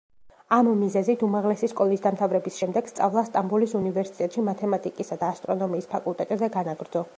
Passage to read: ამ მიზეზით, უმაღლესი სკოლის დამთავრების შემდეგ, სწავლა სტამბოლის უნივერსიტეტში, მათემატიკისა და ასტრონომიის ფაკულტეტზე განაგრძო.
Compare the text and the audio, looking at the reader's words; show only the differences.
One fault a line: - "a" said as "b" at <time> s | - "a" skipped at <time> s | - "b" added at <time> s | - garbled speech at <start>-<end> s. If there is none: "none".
none